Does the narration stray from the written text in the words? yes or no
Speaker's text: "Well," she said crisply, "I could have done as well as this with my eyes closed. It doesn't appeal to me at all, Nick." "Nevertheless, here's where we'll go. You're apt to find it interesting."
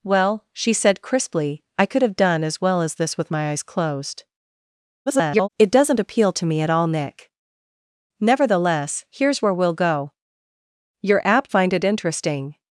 yes